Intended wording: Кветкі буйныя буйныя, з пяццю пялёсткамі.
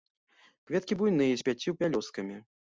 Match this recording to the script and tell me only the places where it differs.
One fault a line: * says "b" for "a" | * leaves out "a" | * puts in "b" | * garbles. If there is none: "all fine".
* leaves out "буйныя"